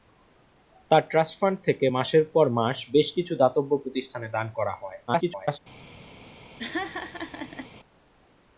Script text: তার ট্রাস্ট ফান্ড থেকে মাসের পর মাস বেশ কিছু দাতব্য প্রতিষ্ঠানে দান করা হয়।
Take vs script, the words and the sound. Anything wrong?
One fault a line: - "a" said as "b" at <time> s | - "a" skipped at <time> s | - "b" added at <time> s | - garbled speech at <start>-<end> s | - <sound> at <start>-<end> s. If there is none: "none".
- garbled speech at 5.1-5.6 s
- laugh at 6.6-7.7 s